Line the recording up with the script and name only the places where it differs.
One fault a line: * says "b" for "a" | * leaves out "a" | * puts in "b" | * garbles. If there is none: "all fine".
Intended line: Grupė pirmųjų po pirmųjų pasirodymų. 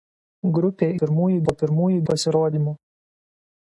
all fine